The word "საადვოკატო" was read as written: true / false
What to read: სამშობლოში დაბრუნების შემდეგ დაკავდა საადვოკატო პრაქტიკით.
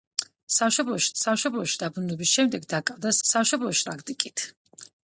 false